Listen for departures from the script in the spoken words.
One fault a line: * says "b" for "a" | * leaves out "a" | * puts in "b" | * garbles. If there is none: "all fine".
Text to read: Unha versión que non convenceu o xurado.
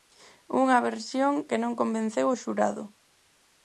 all fine